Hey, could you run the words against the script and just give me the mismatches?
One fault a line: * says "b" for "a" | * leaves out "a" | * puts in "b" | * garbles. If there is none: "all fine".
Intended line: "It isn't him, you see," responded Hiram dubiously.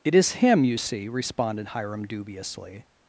* says "is" for "isn't"